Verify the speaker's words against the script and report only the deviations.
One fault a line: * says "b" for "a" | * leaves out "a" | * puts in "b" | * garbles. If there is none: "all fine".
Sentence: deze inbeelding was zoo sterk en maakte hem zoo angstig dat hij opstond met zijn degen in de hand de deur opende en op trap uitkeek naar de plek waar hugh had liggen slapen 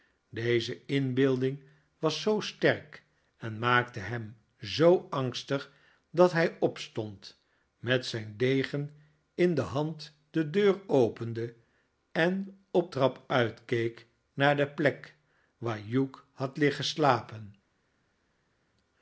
all fine